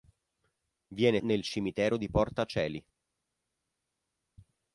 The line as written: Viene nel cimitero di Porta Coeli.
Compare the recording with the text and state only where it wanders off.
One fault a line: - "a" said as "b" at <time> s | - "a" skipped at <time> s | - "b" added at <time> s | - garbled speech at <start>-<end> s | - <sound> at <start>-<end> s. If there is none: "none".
none